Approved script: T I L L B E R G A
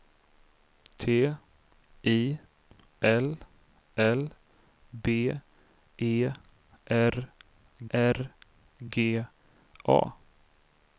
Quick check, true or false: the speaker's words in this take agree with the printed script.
false